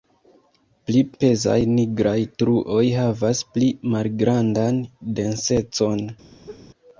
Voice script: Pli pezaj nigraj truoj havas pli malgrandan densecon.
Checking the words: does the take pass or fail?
pass